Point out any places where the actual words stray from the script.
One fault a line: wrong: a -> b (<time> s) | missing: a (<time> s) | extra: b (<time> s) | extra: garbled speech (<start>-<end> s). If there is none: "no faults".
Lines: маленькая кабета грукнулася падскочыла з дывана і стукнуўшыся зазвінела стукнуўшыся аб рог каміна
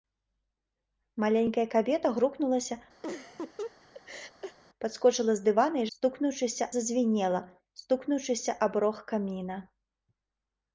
no faults